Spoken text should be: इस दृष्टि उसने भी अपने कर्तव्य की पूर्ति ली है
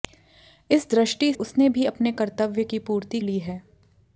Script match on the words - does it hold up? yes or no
yes